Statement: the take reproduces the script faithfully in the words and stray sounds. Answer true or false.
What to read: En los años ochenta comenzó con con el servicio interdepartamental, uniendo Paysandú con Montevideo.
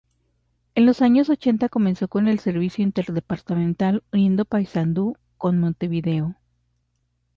false